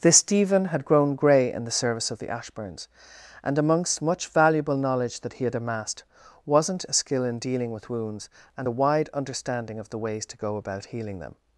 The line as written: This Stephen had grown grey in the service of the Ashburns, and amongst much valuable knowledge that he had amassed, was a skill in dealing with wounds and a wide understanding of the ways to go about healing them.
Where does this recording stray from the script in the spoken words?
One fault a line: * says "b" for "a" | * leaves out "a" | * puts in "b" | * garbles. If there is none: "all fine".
* says "wasn't" for "was"